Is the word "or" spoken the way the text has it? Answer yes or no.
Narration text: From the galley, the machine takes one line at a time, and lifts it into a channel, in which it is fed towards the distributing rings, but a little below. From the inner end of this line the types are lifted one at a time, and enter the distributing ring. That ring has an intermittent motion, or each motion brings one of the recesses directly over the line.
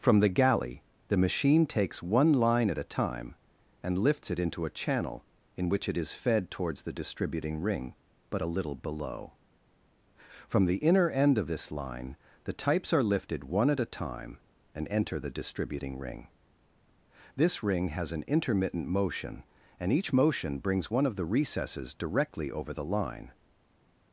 no